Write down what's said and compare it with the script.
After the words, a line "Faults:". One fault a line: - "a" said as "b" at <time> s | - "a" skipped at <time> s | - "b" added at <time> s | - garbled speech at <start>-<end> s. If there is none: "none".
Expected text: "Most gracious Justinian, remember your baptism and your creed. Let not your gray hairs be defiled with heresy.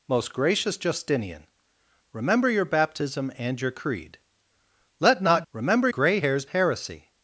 "Most gracious Justinian, remember your baptism and your creed. Let not remember gray hairs heresy.
Faults:
- "your" said as "remember" at 5.5 s
- "be defiled with" skipped at 6.4 s